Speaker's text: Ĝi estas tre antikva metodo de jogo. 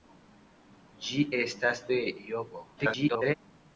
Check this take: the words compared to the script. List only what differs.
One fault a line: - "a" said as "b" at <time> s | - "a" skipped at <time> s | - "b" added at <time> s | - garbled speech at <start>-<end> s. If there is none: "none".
- "tre antikva metodo" skipped at 1.8 s
- garbled speech at 2.8-3.3 s